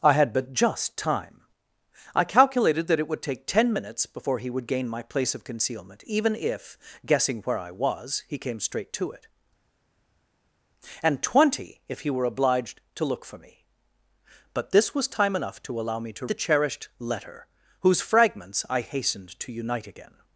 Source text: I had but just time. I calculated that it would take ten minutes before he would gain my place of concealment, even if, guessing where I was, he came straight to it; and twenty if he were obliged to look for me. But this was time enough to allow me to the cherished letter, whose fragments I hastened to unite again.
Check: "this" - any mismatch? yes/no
no